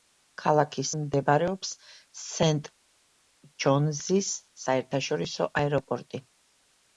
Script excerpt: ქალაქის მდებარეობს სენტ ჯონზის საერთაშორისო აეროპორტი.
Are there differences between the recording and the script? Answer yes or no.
no